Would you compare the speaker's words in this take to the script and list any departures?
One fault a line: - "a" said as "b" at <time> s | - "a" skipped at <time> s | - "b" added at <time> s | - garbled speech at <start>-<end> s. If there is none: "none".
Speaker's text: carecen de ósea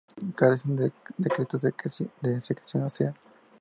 - "secreción" added at 2.4 s